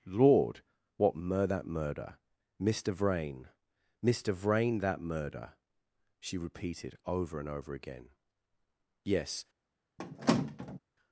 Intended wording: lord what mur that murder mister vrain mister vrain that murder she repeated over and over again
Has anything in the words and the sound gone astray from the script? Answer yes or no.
yes